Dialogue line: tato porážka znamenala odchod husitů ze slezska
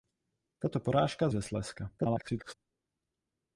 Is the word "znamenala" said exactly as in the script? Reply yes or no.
no